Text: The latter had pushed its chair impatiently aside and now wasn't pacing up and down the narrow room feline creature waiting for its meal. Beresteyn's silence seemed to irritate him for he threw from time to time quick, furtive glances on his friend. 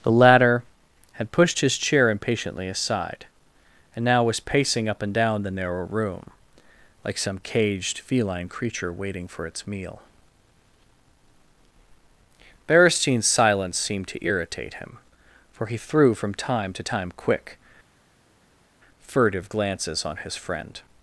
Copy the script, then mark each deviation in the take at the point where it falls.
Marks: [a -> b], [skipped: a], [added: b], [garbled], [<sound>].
The latter had pushed [its -> his] chair impatiently aside and now [wasn't -> was] pacing up and down the narrow room [added: like some caged] feline creature waiting for its meal. Beresteyn's silence seemed to irritate him for he threw from time to time quick, furtive glances on his friend.